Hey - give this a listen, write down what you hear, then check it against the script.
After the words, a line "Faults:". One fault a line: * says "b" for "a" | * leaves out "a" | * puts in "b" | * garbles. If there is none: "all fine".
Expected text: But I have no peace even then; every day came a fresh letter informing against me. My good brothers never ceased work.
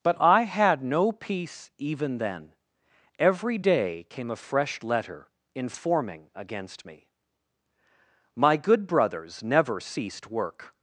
But I had no peace even then; every day came a fresh letter informing against me. My good brothers never ceased work.
Faults:
* says "had" for "have"